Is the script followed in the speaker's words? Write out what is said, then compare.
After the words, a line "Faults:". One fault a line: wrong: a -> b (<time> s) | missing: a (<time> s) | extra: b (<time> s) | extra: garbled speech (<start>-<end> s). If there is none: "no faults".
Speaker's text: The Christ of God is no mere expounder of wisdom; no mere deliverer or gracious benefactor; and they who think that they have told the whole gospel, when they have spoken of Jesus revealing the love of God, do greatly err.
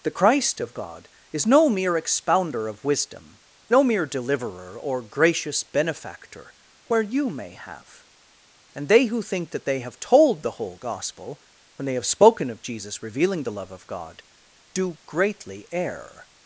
The Christ of God is no mere expounder of wisdom; no mere deliverer or gracious benefactor; where you may have and they who think that they have told the whole gospel, when they have spoken of Jesus revealing the love of God, do greatly err.
Faults:
extra: where you may have (6.9 s)